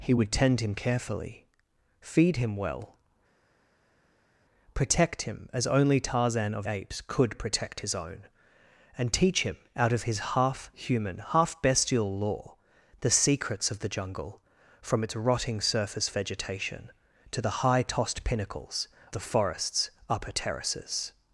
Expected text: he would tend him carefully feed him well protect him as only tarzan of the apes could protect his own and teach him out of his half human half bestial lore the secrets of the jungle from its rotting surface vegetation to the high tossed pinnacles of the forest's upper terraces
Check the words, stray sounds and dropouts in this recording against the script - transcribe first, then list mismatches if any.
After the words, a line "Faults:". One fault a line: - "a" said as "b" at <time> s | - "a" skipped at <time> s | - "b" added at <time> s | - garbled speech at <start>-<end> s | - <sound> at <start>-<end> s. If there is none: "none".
he would tend him carefully feed him well protect him as only tarzan of apes could protect his own and teach him out of his half human half bestial lore the secrets of the jungle from its rotting surface vegetation to the high tossed pinnacles the forest's upper terraces
Faults:
- "the" skipped at 6.7 s
- "of" skipped at 18.9 s